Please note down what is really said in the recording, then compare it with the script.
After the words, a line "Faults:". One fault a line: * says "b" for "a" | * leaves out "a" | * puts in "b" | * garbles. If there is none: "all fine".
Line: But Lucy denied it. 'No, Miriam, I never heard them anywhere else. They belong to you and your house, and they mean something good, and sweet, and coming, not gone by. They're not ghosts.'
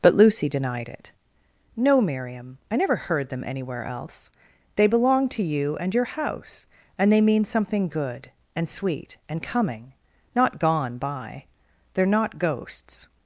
But Lucy denied it. 'No, Miriam, I never heard them anywhere else. They belong to you and your house, and they mean something good, and sweet, and coming, not gone by. They're not ghosts.'
Faults:
all fine